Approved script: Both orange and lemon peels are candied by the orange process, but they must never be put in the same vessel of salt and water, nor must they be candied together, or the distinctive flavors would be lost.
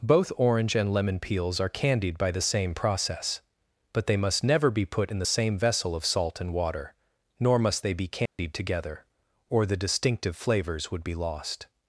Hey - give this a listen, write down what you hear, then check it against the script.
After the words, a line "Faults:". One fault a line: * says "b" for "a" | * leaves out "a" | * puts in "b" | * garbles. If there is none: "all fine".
Both orange and lemon peels are candied by the same process, but they must never be put in the same vessel of salt and water, nor must they be candied together, or the distinctive flavors would be lost.
Faults:
* says "same" for "orange"